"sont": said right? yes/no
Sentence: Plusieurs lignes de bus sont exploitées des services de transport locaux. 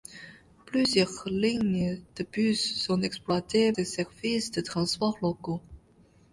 yes